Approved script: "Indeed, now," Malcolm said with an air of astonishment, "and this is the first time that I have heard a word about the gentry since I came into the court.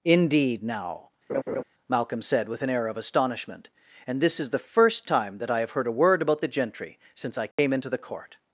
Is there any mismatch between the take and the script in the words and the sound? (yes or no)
yes